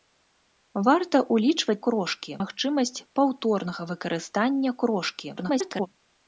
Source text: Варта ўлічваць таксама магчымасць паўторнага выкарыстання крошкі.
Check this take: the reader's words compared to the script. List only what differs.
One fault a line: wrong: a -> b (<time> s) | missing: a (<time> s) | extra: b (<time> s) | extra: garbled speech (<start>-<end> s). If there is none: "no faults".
wrong: таксама -> крошкі (1.9 s)
extra: garbled speech (5.4-5.9 s)